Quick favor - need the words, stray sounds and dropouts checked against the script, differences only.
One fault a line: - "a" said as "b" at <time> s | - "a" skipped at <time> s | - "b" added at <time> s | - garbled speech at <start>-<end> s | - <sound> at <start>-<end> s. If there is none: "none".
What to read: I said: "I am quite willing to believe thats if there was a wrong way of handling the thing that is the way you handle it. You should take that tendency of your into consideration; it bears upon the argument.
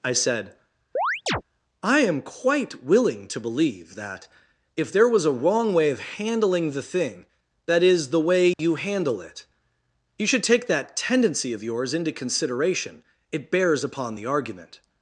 - chirp at 1.0-1.4 s
- "thats" said as "that" at 4.0 s
- dropout at 8.5-8.6 s
- "your" said as "yours" at 11.6 s